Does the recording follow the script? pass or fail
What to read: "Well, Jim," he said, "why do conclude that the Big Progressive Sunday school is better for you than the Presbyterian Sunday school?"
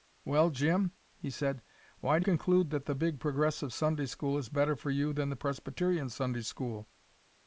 pass